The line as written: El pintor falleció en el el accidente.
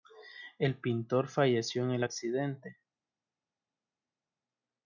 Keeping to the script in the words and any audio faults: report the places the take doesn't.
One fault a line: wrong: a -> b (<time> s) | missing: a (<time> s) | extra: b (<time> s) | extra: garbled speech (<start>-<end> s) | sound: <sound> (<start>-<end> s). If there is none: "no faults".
missing: el (2.0 s)